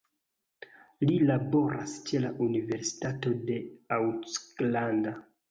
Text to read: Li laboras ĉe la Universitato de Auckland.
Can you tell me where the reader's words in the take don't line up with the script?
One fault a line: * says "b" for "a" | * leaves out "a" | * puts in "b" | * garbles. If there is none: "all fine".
all fine